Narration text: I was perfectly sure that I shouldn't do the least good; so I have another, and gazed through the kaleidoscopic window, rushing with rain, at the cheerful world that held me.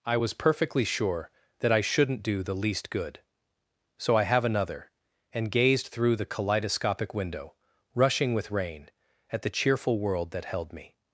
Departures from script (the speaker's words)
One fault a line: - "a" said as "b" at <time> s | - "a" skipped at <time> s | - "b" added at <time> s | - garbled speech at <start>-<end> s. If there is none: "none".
none